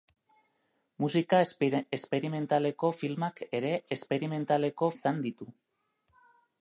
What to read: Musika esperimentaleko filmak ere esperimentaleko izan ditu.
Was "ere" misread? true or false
false